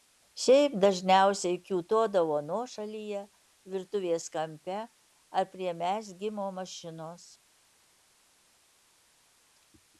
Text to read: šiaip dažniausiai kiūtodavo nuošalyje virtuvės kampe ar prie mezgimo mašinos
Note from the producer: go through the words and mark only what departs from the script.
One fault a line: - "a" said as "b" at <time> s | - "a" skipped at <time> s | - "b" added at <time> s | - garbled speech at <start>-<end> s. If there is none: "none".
none